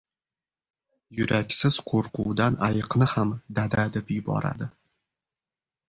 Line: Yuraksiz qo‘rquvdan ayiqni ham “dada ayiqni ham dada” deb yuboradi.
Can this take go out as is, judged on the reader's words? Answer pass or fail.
fail